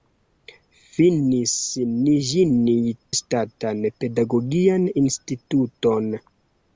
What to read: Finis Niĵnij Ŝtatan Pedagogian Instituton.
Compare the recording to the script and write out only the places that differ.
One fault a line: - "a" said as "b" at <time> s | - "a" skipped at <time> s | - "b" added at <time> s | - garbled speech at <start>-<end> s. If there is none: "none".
none